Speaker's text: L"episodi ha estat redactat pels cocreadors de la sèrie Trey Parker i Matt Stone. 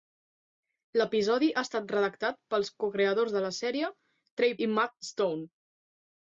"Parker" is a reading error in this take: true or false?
true